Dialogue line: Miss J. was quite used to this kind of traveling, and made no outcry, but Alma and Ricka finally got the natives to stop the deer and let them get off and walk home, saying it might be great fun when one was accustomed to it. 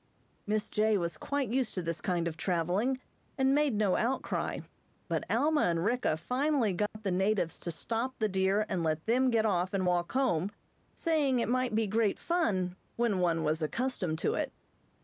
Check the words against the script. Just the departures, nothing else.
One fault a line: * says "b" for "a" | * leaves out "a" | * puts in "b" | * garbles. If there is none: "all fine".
all fine